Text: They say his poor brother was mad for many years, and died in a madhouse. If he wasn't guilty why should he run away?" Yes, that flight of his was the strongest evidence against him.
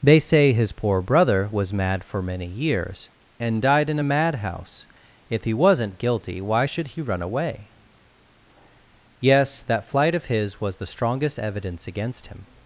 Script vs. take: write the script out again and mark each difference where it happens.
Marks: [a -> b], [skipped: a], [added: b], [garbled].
They say his poor brother was mad for many years, and died in a madhouse. If he wasn't guilty why should he run away?" Yes, that flight of his was the strongest evidence against him.